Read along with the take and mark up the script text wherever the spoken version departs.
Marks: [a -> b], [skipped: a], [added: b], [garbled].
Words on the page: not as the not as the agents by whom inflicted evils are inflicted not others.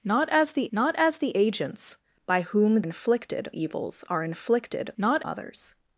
not as the not as the agents by whom inflicted evils are inflicted not others.